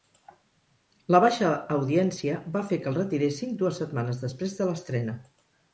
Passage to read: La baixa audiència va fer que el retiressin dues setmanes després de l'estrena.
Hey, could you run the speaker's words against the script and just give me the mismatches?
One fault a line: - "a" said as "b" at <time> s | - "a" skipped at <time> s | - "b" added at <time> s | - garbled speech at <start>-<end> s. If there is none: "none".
none